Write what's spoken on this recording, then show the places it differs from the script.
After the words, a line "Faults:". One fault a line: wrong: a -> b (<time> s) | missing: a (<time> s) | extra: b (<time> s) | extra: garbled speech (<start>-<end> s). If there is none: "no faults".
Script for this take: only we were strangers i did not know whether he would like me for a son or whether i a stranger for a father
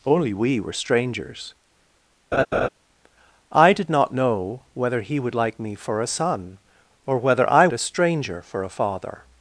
only we were strangers i did not know whether he would like me for a son or whether i a stranger for a father
Faults:
no faults